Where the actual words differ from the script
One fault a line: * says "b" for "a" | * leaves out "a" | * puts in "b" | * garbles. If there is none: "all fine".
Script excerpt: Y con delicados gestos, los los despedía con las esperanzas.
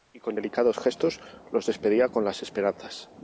* leaves out "los"